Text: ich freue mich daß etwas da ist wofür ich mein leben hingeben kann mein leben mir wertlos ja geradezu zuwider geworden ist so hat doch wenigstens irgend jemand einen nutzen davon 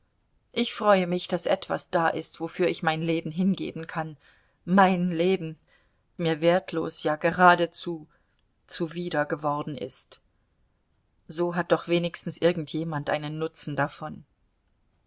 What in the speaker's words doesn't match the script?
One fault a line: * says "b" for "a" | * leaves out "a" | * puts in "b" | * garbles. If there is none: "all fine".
all fine